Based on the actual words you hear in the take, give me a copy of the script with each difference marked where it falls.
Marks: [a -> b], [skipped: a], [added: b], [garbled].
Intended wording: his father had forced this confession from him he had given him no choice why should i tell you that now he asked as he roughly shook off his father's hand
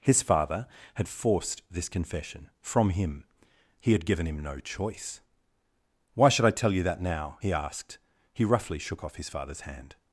his father had forced this confession from him he had given him no choice why should i tell you that now he asked [skipped: as] he roughly shook off his father's hand